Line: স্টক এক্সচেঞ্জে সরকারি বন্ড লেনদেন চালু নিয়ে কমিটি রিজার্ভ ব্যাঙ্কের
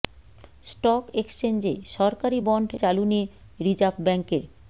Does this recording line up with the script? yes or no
no